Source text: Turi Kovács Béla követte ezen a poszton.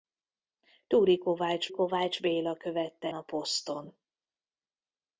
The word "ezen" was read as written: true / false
false